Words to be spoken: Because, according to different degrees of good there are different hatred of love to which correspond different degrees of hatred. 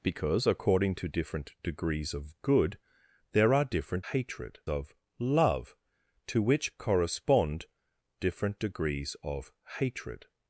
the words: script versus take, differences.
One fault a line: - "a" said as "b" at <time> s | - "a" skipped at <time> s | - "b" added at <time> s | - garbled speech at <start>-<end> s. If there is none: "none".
none